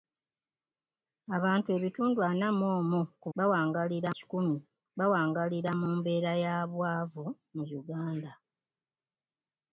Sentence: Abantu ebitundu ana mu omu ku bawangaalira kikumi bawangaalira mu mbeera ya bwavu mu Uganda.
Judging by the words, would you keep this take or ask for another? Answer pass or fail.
pass